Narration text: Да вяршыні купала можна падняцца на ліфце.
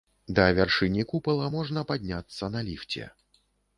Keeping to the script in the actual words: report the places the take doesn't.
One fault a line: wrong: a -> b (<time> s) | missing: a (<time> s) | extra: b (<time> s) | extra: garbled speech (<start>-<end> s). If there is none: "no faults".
no faults